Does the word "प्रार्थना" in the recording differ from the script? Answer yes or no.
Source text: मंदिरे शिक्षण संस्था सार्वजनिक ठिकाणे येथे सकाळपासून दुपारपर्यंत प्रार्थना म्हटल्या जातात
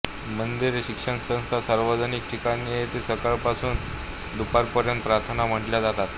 no